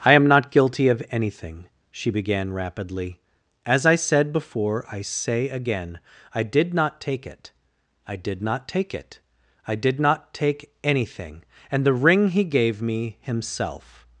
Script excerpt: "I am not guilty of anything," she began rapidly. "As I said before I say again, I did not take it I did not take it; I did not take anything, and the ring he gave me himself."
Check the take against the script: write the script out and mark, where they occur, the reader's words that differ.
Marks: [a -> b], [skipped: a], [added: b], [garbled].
"I am not guilty of anything," she began rapidly. "As I said before I say again, I did not take it I did not take it; I did not take anything, and the ring he gave me himself."